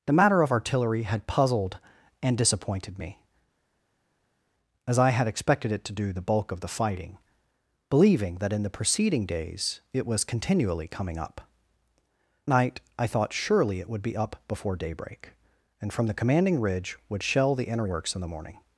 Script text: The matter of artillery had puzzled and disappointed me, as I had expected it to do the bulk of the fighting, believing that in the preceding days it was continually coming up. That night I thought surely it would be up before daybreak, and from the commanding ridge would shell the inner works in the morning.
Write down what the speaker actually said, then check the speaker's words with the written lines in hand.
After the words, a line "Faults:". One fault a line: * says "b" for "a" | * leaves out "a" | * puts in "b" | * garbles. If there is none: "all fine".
The matter of artillery had puzzled and disappointed me, as I had expected it to do the bulk of the fighting, believing that in the preceding days it was continually coming up. Night I thought surely it would be up before daybreak, and from the commanding ridge would shell the inner works in the morning.
Faults:
* leaves out "That"